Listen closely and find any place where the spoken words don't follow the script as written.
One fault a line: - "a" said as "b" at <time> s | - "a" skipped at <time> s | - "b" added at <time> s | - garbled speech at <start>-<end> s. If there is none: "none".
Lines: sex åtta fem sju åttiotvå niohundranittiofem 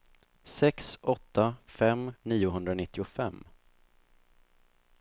- "sju åttiotvå" skipped at 2.1 s